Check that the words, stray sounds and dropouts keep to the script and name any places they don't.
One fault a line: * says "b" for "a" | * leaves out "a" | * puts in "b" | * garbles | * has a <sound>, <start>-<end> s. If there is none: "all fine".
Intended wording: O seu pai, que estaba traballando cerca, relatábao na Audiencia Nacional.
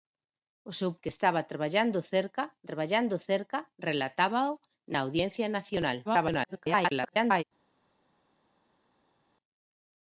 * leaves out "pai"
* puts in "traballando cerca"
* garbles